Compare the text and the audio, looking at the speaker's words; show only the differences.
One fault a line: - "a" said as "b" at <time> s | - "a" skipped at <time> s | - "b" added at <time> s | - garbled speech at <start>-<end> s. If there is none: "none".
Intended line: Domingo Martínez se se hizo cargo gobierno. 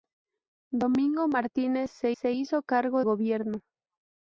none